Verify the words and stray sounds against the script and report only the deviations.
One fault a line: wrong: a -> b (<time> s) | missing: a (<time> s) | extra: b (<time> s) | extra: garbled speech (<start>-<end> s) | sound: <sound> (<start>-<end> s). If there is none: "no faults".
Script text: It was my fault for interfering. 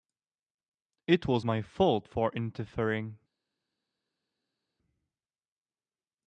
no faults